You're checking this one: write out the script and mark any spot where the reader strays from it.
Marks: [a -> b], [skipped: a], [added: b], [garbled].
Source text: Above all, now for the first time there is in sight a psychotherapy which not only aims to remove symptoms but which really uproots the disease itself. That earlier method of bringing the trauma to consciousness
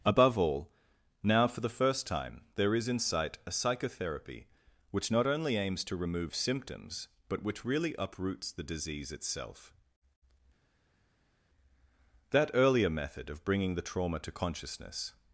Above all, now for the first time there is in sight a psychotherapy which not only aims to remove symptoms but which really uproots the disease itself. That earlier method of bringing the trauma to consciousness